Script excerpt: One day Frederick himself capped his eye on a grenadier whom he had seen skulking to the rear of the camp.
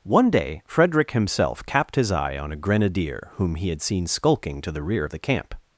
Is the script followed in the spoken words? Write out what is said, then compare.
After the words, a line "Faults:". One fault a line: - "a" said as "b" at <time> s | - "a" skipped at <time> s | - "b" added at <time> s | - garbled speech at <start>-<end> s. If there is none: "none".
One day Frederick himself capped his eye on a grenadier whom he had seen skulking to the rear of the camp.
Faults:
none